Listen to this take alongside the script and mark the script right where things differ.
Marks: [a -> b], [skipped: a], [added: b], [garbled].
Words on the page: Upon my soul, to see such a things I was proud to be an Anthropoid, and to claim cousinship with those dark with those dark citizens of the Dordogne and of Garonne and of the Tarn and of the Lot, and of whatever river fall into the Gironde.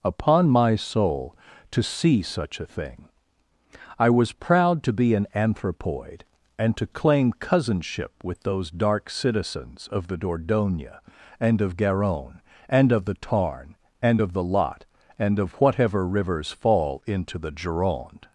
Upon my soul, to see such a [things -> thing] I was proud to be an Anthropoid, and to claim cousinship with those dark [skipped: with those dark] citizens of the Dordogne and of Garonne and of the Tarn and of the Lot, and of whatever [river -> rivers] fall into the Gironde.